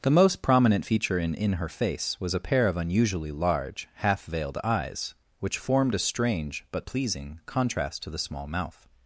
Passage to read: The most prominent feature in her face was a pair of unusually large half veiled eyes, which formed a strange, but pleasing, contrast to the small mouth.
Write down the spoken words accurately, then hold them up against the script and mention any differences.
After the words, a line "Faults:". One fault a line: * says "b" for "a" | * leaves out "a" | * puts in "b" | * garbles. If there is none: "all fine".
The most prominent feature in in her face was a pair of unusually large half veiled eyes, which formed a strange, but pleasing, contrast to the small mouth.
Faults:
* puts in "in"